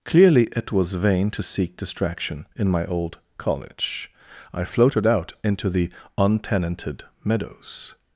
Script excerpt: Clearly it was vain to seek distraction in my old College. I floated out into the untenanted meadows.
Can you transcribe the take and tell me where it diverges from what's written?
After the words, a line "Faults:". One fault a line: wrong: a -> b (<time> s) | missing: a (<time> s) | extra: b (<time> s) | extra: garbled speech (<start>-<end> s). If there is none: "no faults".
Clearly it was vain to seek distraction in my old College. I floated out into the untenanted meadows.
Faults:
no faults